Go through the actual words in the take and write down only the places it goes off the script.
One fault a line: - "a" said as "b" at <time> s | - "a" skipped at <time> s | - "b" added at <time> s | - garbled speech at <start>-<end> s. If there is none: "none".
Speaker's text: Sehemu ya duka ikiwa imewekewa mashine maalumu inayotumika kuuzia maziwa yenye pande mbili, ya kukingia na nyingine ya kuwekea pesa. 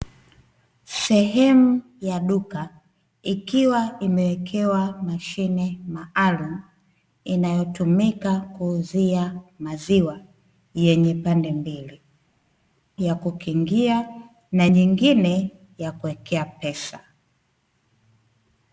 none